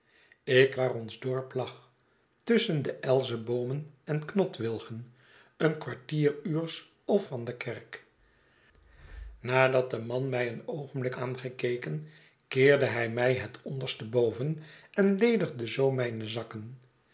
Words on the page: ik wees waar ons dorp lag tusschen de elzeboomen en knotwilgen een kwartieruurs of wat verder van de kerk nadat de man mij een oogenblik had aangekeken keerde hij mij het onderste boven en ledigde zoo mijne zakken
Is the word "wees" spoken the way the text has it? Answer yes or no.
no